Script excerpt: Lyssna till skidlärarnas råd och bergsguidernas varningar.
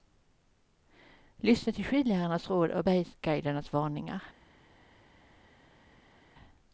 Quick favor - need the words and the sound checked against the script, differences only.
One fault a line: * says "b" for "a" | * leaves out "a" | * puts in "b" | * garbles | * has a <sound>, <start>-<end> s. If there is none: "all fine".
all fine